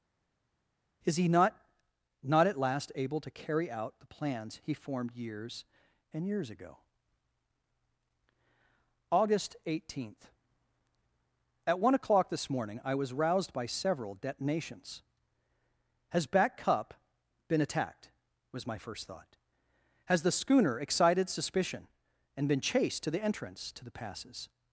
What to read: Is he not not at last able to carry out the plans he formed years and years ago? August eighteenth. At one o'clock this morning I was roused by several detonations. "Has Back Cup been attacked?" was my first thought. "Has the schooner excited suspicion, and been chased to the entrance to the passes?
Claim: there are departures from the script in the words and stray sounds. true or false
false